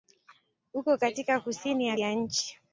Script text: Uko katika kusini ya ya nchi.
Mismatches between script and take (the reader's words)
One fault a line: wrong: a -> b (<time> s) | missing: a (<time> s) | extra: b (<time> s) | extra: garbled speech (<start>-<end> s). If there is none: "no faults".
no faults